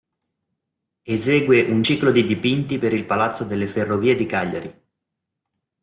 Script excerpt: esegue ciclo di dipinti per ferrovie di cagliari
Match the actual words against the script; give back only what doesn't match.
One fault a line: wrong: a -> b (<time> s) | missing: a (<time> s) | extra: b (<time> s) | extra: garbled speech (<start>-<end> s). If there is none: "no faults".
extra: un (1.7 s)
extra: il palazzo delle (2.9 s)